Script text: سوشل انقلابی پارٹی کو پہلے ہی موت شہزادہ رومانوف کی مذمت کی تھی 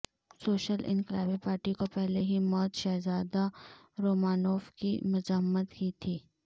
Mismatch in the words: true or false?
false